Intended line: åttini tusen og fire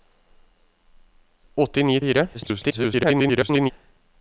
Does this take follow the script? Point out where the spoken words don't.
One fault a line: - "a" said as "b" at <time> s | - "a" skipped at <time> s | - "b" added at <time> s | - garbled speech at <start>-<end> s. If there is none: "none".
- "tusen" skipped at 2.0 s
- garbled speech at 2.3-3.7 s